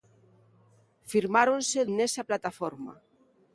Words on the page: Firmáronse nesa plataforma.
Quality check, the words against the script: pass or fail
pass